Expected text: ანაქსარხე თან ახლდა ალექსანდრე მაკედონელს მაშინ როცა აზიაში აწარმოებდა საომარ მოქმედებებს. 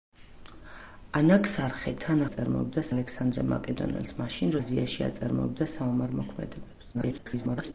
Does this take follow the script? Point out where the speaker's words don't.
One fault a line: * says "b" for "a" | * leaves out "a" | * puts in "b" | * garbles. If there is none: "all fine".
* says "აწარმოებდა" for "ახლდა"
* leaves out "როცა"
* garbles